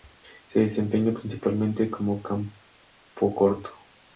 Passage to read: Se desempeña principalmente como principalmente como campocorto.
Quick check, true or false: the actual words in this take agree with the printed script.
false